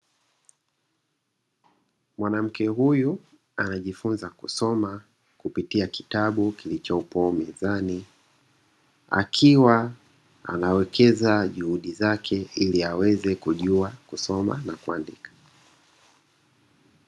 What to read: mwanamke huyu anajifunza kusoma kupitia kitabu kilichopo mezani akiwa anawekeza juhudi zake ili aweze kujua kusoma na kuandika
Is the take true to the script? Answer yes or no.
yes